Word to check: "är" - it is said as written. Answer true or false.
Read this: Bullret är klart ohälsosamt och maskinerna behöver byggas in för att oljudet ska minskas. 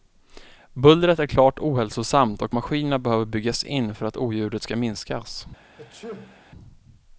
true